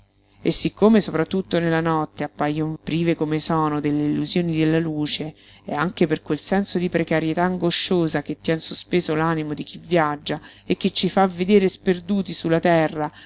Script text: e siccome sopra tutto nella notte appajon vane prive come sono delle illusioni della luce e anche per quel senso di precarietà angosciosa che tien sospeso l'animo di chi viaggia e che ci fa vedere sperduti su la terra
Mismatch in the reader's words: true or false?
true